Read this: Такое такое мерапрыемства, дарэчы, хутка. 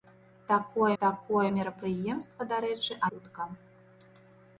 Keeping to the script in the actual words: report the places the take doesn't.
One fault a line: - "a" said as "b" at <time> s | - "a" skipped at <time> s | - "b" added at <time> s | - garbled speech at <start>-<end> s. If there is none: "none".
none